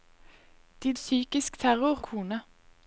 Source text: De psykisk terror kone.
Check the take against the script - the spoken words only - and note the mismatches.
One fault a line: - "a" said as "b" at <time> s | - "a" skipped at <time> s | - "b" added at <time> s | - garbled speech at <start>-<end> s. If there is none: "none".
none